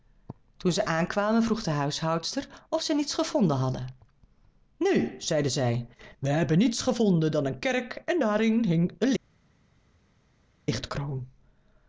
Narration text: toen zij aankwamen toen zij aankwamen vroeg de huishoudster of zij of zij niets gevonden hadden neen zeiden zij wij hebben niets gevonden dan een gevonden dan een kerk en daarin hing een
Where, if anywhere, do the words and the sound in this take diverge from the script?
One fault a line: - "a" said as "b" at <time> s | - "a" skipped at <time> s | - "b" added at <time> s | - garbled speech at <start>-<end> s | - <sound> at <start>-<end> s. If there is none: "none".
- "toen zij aankwamen" skipped at 1.4 s
- "of zij" skipped at 3.0 s
- "gevonden dan een" skipped at 7.6 s